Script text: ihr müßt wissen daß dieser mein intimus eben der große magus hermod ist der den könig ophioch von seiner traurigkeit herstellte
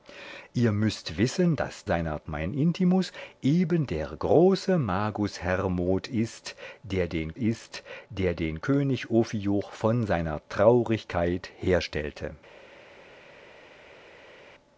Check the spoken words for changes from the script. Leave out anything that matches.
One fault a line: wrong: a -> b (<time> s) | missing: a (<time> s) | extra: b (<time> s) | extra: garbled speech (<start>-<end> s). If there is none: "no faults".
wrong: dieser -> seiner (1.9 s)
extra: ist der den (7.4 s)